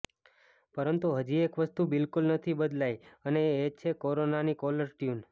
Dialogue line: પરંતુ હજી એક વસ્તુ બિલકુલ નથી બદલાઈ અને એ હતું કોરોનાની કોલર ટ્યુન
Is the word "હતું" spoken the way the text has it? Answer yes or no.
no